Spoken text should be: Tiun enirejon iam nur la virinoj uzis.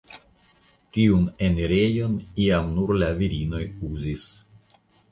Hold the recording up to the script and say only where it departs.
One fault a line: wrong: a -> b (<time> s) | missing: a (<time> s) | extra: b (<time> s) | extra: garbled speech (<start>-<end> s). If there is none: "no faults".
no faults